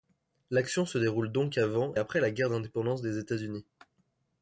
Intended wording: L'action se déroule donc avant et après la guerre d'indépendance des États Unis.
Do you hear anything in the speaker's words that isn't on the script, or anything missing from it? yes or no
yes